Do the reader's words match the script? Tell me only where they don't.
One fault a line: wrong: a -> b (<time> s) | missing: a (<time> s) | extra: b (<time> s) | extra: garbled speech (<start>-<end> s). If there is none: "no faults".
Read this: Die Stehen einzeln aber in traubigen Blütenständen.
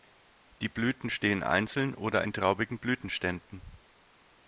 extra: Blüten (0.7 s)
wrong: aber -> oder (1.9 s)